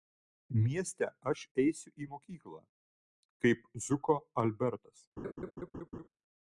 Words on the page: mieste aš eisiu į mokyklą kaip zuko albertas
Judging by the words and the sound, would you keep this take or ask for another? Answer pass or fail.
fail